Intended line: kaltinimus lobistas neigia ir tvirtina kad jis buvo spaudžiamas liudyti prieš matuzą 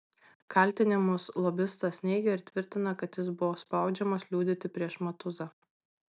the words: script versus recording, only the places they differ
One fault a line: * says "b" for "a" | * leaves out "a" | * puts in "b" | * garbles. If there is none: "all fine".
all fine